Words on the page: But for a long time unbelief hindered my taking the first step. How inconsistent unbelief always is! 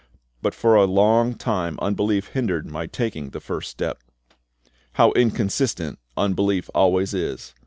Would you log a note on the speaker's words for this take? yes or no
no